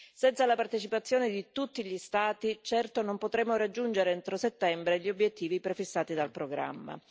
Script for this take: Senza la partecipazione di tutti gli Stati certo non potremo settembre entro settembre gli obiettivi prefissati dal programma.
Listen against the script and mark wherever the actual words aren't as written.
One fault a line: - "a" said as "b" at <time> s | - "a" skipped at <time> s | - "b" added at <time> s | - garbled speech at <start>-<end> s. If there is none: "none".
- "settembre" said as "raggiungere" at 3.6 s